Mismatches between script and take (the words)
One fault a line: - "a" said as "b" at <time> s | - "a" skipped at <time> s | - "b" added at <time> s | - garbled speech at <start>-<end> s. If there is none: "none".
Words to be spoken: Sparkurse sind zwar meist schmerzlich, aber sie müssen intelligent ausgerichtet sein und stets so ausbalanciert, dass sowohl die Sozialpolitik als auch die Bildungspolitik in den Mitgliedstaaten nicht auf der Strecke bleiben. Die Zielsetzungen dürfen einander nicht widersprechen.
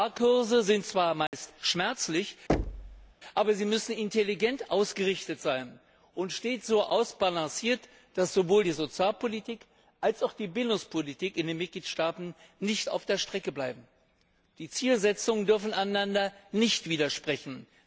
none